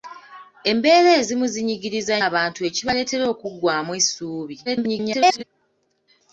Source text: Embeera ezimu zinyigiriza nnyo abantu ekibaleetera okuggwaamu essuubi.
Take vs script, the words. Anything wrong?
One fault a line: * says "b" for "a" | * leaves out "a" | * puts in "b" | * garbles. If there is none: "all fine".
* leaves out "nnyo"
* garbles